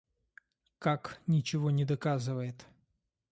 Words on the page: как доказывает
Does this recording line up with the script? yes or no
no